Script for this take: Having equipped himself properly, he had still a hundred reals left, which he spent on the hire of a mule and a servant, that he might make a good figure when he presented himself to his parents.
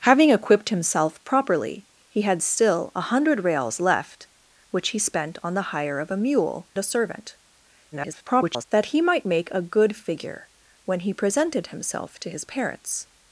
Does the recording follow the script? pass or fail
fail